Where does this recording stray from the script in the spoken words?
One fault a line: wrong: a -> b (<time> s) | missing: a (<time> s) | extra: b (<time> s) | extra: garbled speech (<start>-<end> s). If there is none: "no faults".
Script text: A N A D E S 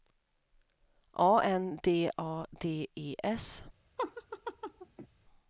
extra: D (1.8 s)